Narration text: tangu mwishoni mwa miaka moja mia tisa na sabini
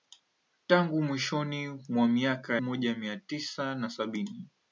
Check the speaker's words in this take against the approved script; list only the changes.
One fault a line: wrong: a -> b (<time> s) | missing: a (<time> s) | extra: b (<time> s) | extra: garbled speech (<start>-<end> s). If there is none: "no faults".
no faults